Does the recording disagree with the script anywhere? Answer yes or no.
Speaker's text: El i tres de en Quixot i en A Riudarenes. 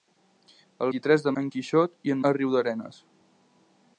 no